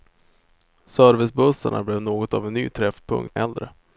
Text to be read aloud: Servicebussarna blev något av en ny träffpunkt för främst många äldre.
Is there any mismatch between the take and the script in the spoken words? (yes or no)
yes